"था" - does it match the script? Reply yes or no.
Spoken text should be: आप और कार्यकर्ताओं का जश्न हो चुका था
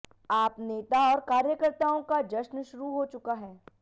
no